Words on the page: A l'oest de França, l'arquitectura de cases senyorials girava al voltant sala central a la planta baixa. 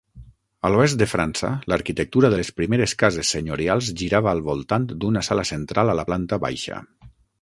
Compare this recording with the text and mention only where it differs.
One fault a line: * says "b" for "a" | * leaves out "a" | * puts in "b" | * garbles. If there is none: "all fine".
* puts in "les primeres"
* puts in "d'una"